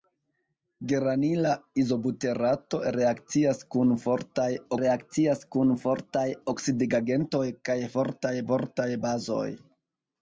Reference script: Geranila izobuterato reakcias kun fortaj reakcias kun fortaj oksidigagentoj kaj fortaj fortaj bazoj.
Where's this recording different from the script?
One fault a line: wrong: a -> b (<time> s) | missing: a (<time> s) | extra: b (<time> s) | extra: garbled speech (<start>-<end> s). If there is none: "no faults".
no faults